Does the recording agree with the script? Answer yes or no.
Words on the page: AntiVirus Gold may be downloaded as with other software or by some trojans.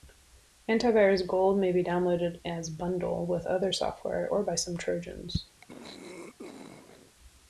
no